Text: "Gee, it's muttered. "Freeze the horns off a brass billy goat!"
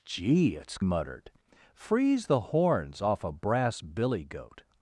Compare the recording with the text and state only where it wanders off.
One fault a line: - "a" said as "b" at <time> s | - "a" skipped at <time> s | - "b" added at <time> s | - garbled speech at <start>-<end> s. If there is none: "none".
none